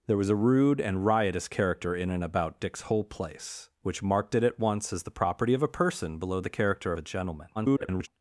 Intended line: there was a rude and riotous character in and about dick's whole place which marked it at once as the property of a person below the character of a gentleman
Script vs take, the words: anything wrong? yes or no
yes